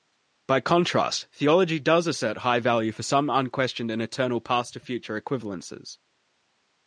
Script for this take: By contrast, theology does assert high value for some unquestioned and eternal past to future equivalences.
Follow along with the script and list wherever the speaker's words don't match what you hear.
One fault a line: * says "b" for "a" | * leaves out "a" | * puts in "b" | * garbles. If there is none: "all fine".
all fine